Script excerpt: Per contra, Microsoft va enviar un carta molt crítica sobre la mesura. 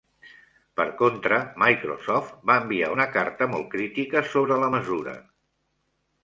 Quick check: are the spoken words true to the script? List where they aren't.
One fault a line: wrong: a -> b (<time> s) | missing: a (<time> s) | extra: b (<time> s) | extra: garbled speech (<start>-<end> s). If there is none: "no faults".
wrong: un -> una (2.9 s)